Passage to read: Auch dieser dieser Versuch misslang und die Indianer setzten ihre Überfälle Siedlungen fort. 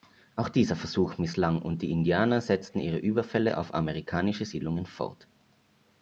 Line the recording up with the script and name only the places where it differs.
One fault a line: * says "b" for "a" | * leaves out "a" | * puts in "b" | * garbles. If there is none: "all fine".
* leaves out "dieser"
* puts in "auf amerikanische"